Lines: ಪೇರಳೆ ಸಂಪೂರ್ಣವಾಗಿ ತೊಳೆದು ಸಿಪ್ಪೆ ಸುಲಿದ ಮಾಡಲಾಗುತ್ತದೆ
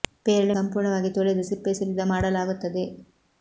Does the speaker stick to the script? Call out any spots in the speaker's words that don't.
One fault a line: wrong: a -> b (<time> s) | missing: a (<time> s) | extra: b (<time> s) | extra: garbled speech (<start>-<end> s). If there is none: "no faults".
no faults